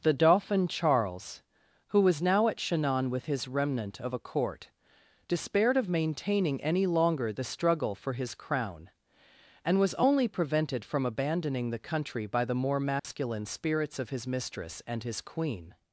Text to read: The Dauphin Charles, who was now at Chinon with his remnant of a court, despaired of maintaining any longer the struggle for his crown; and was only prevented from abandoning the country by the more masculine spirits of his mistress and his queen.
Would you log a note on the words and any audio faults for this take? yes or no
yes